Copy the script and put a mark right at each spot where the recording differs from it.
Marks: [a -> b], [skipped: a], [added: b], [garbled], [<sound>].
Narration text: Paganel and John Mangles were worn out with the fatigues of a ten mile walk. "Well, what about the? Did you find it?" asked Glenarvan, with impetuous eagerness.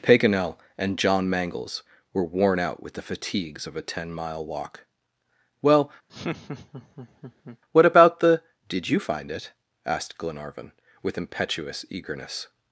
Paganel and John Mangles were worn out with the fatigues of a ten mile walk. "Well, [laugh] what about the? Did you find it?" asked Glenarvan, with impetuous eagerness.